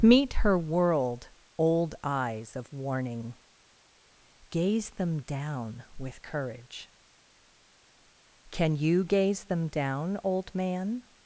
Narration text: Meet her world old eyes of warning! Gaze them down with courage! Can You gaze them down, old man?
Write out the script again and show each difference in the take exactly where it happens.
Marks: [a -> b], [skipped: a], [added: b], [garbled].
Meet her world old eyes of warning! Gaze them down with courage! Can You gaze them down, old man?